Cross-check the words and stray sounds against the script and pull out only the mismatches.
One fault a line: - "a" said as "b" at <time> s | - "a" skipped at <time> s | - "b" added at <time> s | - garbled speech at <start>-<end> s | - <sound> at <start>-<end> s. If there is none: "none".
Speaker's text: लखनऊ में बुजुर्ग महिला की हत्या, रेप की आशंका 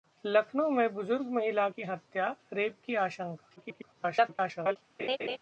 - garbled speech at 3.6-4.8 s
- laugh at 5.0-5.4 s